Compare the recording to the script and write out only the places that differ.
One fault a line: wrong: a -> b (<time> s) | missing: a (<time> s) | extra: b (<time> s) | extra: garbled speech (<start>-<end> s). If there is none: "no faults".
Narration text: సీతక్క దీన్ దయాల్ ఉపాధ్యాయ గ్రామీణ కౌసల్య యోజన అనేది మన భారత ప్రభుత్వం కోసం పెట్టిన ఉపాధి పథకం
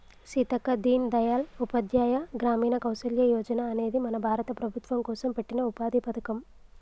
no faults